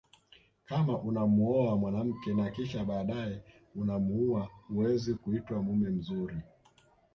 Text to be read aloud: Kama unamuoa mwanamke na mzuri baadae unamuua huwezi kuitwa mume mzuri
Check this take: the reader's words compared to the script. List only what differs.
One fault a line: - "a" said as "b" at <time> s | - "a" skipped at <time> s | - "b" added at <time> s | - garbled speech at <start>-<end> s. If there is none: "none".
- "mzuri" said as "kisha" at 2.5 s